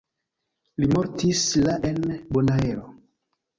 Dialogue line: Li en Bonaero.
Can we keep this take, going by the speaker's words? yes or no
no